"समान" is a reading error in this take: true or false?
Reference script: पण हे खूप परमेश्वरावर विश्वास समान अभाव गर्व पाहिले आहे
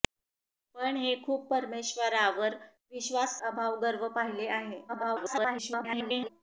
true